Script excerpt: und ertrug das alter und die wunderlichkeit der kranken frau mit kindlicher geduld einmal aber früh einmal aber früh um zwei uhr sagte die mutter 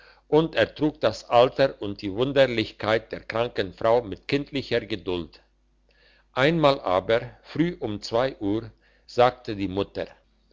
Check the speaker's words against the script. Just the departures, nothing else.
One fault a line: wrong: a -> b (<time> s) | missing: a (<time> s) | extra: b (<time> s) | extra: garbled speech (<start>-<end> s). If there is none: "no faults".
missing: einmal aber früh (7.8 s)